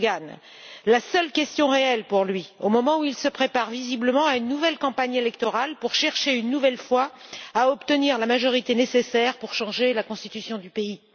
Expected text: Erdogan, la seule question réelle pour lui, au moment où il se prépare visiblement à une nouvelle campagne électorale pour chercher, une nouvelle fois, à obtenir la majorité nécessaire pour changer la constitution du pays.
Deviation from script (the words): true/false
false